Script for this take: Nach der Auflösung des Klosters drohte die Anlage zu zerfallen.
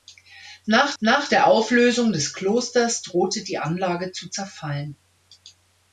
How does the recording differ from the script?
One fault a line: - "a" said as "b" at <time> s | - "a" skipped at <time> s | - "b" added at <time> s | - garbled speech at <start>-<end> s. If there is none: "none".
- "nach" added at 1.0 s